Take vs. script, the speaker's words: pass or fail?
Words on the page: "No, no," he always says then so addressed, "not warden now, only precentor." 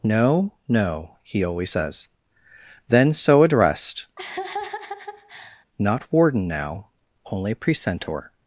pass